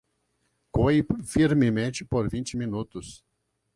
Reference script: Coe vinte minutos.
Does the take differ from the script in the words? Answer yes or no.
yes